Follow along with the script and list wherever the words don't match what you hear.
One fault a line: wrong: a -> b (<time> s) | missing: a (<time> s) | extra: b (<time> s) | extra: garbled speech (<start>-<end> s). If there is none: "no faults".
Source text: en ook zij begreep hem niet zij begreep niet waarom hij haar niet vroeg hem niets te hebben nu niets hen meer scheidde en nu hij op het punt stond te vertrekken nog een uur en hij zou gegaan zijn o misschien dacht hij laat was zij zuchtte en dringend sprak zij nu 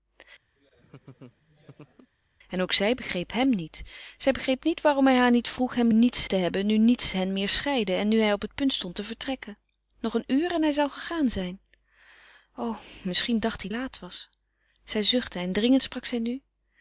no faults